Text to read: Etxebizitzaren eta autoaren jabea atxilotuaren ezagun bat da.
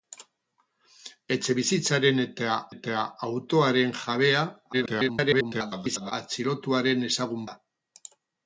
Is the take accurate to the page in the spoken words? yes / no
no